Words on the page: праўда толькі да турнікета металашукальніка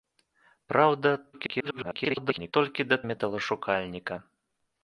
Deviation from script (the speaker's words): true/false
true